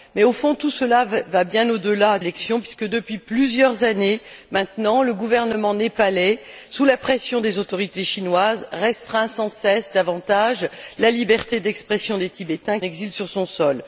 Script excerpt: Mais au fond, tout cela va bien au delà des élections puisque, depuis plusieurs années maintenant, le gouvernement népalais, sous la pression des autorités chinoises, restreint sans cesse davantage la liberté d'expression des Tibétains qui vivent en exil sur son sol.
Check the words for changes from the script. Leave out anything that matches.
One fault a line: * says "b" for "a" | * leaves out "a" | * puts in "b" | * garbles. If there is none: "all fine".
* leaves out "des"
* leaves out "qui vivent en"